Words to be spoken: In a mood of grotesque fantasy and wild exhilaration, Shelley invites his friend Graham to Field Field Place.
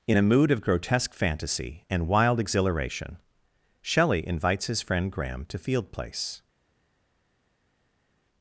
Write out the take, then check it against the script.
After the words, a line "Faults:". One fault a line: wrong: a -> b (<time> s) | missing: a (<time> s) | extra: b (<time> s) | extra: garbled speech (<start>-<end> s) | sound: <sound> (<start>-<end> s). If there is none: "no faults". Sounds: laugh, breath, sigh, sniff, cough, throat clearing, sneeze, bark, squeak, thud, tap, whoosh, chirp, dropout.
In a mood of grotesque fantasy and wild exhilaration, Shelley invites his friend Graham to Field Place.
Faults:
missing: Field (5.9 s)